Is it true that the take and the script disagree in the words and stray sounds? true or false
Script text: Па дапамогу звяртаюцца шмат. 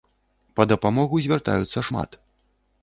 false